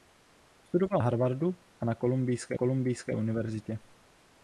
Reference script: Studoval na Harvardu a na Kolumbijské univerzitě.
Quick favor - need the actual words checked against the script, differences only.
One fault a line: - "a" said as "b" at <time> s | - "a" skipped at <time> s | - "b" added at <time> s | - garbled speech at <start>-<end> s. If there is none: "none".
- "na" skipped at 1.0 s
- "Kolumbijské" added at 2.5 s